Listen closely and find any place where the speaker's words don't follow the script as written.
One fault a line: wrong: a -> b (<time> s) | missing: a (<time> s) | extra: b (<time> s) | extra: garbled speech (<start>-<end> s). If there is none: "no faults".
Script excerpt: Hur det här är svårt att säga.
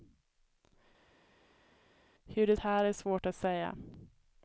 no faults